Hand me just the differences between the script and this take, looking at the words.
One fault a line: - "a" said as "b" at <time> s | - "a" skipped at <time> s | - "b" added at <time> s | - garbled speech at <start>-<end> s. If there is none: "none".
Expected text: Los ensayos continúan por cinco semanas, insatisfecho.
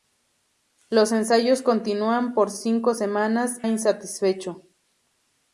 none